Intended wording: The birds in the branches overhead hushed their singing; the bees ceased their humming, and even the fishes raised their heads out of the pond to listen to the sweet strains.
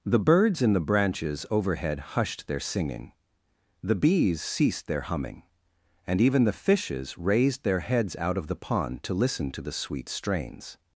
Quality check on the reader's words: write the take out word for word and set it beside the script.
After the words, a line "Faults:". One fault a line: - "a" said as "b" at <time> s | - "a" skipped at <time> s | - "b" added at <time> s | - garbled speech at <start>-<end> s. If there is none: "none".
The birds in the branches overhead hushed their singing; the bees ceased their humming, and even the fishes raised their heads out of the pond to listen to the sweet strains.
Faults:
none